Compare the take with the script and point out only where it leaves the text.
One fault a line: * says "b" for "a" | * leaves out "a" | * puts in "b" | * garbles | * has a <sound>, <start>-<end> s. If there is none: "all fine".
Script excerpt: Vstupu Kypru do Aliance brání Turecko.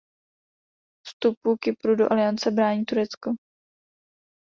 all fine